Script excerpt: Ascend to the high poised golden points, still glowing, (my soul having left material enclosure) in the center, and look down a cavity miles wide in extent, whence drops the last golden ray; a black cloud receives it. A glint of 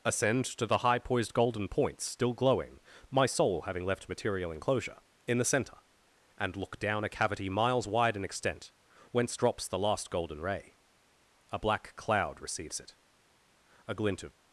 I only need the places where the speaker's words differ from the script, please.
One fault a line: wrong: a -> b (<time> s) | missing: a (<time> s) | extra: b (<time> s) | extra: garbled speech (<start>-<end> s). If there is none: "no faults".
no faults